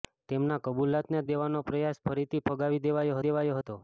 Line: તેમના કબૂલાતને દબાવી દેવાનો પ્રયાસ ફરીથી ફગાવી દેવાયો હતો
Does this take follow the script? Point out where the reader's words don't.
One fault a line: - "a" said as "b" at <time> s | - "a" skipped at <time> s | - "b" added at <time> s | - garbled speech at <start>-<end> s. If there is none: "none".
- "દબાવી" skipped at 1.2 s
- "દેવાયો" added at 3.3 s